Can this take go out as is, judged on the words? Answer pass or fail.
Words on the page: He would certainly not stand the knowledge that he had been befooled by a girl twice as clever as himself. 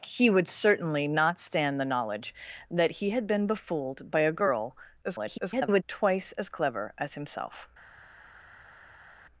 fail